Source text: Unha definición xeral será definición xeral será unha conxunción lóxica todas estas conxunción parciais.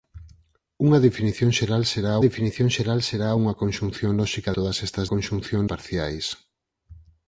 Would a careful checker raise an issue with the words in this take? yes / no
no